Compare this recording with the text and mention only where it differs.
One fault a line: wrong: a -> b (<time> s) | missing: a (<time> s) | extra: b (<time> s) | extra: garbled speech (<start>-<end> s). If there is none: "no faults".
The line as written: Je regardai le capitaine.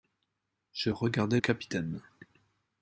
missing: le (1.4 s)